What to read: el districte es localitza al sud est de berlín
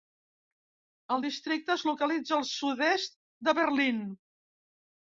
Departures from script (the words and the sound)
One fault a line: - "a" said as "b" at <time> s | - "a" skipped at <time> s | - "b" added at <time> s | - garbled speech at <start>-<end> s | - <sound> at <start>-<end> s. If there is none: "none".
none